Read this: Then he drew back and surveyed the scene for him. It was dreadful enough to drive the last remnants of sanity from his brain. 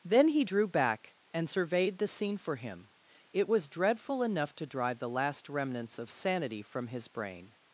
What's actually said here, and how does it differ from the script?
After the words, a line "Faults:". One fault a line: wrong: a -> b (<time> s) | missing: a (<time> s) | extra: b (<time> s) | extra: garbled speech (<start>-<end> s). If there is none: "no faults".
Then he drew back and surveyed the scene for him. It was dreadful enough to drive the last remnants of sanity from his brain.
Faults:
no faults